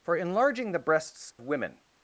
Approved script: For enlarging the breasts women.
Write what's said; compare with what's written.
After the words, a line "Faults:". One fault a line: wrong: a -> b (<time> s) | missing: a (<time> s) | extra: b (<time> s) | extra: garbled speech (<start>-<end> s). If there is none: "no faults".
For enlarging the breasts women.
Faults:
no faults